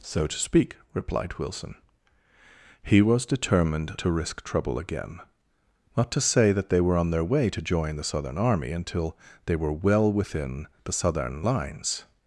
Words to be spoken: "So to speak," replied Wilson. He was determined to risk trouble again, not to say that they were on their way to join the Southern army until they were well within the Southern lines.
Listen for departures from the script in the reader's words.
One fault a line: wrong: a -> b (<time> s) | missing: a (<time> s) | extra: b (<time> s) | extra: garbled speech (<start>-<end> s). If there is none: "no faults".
no faults